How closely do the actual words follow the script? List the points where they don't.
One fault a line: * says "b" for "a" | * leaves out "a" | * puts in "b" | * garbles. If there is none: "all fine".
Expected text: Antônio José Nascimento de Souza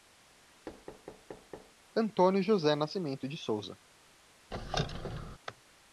all fine